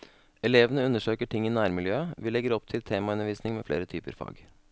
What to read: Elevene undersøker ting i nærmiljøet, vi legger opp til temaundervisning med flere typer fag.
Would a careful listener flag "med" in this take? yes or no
no